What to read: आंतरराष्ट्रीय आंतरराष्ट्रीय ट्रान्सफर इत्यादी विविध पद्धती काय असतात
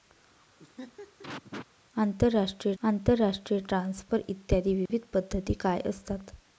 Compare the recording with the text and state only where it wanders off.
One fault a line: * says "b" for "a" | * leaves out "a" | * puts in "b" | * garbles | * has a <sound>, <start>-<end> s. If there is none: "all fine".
* has a laugh, 0.6-1.7 s
* has a dropout, 4.9-4.9 s